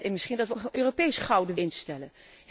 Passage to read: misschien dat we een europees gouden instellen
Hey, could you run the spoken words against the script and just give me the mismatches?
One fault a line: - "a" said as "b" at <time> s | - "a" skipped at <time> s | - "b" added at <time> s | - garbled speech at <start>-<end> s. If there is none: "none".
none